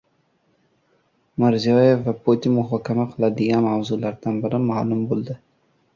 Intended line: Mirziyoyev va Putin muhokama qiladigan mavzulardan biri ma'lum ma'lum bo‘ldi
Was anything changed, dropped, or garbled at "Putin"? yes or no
no